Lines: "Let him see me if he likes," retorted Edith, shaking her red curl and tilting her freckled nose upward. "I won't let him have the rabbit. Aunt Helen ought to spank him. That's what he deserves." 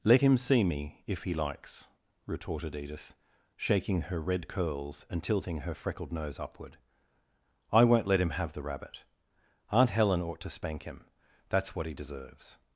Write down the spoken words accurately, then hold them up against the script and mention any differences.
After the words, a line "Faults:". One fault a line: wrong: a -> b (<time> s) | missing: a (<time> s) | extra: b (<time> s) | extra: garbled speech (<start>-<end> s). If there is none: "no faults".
"Let him see me if he likes," retorted Edith, shaking her red curls and tilting her freckled nose upward. "I won't let him have the rabbit. Aunt Helen ought to spank him. That's what he deserves."
Faults:
wrong: curl -> curls (4.5 s)